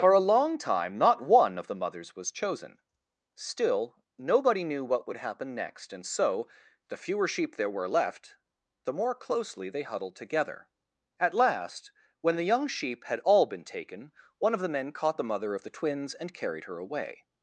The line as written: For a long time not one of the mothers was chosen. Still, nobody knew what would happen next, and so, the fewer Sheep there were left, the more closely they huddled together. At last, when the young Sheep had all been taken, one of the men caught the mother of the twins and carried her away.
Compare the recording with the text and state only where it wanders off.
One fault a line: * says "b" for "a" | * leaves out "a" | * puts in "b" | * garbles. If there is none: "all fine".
all fine